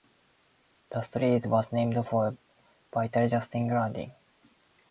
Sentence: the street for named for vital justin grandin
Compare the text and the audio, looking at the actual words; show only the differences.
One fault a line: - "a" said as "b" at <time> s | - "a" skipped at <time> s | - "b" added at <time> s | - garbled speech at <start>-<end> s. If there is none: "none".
- "for" said as "was" at 1.4 s